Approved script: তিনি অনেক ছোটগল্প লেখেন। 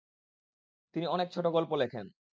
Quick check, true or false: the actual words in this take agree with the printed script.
true